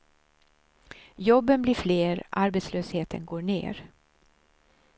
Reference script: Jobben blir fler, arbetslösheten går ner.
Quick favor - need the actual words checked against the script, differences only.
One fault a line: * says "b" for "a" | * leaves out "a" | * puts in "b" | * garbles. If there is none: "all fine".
all fine